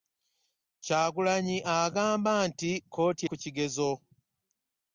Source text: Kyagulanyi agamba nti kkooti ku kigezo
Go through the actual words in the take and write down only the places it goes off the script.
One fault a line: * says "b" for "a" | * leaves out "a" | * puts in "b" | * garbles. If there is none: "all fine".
all fine